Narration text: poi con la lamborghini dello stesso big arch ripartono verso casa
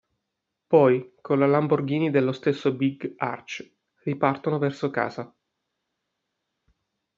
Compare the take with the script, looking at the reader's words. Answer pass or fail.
pass